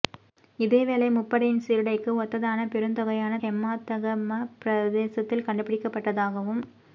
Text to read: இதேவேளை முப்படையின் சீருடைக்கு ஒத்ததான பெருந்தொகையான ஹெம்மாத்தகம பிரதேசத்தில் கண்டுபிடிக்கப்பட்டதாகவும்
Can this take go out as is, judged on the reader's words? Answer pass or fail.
pass